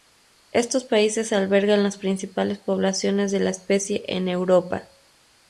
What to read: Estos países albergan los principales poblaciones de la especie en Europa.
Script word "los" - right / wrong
wrong